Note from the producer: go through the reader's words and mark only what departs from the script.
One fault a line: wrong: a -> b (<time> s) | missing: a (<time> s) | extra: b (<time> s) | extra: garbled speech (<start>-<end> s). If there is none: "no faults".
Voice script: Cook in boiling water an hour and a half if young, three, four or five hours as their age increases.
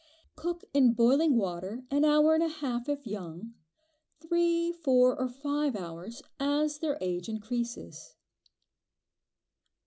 no faults